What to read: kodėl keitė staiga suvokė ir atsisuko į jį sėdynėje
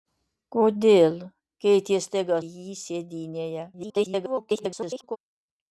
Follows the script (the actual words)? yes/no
no